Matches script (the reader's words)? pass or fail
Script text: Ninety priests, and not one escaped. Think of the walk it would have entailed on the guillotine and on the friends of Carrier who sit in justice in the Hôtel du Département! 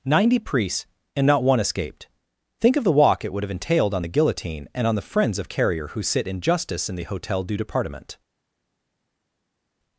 pass